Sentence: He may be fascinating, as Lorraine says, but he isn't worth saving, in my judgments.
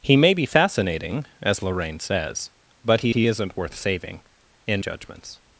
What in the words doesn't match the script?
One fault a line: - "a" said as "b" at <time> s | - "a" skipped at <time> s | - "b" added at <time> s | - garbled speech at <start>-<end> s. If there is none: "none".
- "he" added at 3.1 s
- "my" skipped at 4.8 s